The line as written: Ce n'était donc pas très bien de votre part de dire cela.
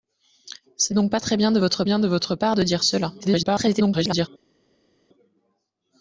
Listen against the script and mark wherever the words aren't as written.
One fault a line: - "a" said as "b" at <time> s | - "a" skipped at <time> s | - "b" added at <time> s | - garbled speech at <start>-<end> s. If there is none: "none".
- "n'était" skipped at 0.9 s
- "bien de votre" added at 1.8 s
- garbled speech at 3.2-4.3 s